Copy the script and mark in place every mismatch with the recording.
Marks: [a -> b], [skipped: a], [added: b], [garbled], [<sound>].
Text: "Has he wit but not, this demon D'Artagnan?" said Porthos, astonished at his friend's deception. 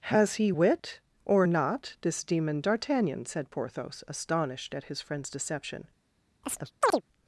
"Has he wit [but -> or] not, this demon D'Artagnan?" said Porthos, astonished at his friend's deception. [chirp]